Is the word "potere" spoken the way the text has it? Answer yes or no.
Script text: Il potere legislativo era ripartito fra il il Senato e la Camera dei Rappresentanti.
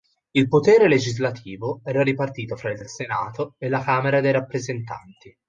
yes